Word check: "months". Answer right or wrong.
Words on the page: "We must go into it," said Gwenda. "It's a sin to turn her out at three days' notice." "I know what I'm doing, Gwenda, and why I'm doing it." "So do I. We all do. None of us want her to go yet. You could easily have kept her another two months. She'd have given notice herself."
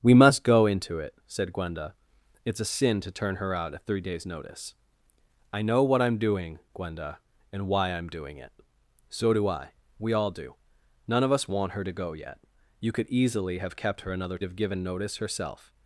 wrong